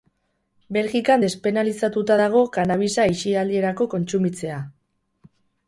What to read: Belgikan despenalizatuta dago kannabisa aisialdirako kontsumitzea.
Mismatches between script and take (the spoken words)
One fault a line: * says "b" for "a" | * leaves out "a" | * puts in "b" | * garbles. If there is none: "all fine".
all fine